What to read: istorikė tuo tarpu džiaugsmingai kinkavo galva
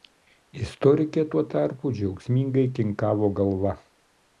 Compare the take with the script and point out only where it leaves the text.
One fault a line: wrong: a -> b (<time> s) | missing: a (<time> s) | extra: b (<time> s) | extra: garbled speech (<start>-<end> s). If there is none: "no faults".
no faults